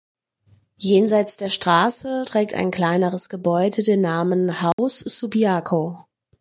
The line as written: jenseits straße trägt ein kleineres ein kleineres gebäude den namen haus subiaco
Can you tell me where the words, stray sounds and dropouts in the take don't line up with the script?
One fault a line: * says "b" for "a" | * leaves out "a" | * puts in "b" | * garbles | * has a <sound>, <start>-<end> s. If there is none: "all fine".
* puts in "der"
* leaves out "ein kleineres"
* has a dropout, 4.7-4.8 s